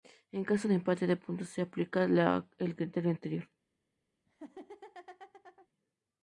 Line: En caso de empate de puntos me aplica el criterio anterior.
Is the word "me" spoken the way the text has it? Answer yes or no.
no